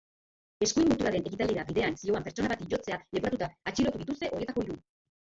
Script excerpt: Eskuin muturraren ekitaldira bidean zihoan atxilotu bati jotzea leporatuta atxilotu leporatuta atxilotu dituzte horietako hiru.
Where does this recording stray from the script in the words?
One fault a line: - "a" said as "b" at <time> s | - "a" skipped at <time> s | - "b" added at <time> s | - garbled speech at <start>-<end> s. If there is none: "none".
- "atxilotu" said as "pertsona" at 2.3 s
- "leporatuta atxilotu" skipped at 4.0 s